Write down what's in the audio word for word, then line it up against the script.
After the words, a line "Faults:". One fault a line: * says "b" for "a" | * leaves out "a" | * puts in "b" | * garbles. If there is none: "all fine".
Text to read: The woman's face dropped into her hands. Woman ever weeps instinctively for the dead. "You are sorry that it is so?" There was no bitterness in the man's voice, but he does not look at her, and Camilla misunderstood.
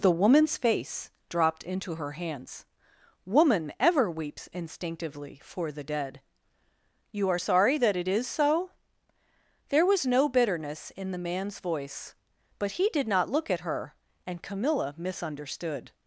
The woman's face dropped into her hands. Woman ever weeps instinctively for the dead. "You are sorry that it is so?" There was no bitterness in the man's voice, but he did not look at her, and Camilla misunderstood.
Faults:
* says "did" for "does"